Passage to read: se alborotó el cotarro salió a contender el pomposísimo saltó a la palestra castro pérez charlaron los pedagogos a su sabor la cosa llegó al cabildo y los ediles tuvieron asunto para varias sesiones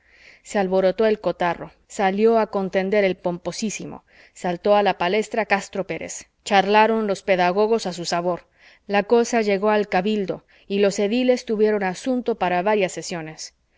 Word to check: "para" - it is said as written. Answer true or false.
true